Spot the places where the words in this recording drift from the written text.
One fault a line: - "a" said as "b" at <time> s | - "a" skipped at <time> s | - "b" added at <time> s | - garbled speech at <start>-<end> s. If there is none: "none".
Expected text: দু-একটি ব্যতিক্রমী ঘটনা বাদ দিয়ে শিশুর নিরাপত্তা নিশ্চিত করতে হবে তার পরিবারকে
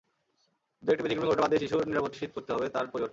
none